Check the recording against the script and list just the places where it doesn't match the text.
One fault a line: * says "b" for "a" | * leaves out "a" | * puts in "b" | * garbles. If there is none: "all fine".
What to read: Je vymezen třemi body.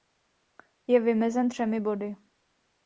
all fine